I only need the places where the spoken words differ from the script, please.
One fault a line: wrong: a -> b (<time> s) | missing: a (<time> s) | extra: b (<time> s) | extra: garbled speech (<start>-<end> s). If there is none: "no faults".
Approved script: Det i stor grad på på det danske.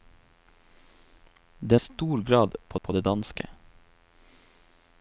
no faults